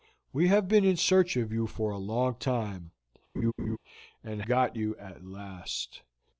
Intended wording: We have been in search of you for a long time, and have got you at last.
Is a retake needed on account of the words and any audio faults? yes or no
yes